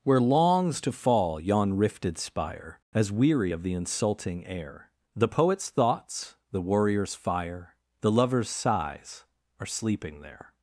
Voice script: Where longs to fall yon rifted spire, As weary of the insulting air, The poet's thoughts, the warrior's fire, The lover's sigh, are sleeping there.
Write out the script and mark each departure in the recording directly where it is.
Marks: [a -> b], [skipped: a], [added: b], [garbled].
Where longs to fall yon rifted spire, As weary of the insulting air, The poet's thoughts, the warrior's fire, The lover's [sigh, -> sighs] are sleeping there.